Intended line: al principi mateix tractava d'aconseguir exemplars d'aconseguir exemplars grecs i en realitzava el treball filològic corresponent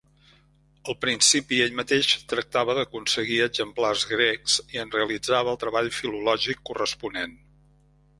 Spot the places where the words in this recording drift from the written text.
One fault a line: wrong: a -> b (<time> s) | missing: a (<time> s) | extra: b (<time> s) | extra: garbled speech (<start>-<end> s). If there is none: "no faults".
extra: ell (1.6 s)
missing: d'aconseguir exemplars (4.0 s)